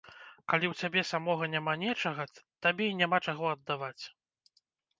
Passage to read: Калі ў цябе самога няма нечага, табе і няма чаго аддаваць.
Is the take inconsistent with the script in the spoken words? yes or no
no